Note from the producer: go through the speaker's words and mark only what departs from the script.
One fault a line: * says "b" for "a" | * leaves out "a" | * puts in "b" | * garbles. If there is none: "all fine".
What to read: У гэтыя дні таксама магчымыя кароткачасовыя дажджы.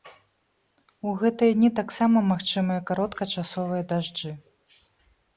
all fine